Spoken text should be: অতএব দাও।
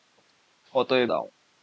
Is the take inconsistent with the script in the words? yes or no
no